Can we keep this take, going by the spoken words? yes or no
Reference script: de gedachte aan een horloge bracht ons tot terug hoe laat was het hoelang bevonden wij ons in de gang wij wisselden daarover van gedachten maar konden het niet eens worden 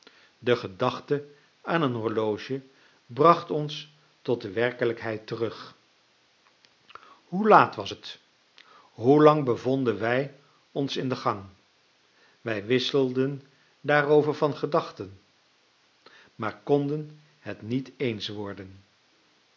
no